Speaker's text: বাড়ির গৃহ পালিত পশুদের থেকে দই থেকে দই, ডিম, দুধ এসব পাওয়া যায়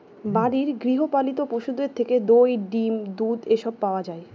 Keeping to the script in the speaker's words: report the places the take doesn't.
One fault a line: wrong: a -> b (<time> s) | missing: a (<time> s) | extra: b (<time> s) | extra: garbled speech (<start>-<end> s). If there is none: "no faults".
missing: থেকে দই (2.5 s)